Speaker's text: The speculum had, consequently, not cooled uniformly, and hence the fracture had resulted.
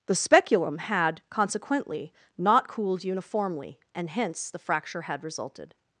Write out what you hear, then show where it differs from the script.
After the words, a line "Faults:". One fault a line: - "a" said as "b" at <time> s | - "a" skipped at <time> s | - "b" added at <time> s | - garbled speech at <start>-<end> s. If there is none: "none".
The speculum had, consequently, not cooled uniformly, and hence the fracture had resulted.
Faults:
none